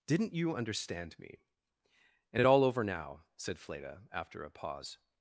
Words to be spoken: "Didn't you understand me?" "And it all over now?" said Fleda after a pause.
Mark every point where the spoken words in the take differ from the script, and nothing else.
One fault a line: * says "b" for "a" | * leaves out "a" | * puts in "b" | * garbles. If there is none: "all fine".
all fine